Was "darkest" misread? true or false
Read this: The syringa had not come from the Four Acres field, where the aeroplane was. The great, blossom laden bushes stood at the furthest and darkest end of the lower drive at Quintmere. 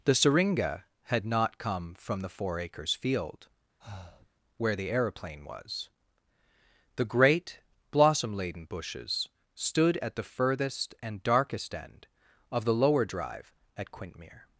false